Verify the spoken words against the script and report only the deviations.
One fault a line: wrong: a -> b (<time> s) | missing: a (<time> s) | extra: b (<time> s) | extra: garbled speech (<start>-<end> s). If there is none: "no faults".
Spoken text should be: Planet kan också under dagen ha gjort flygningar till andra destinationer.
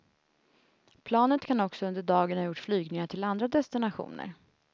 no faults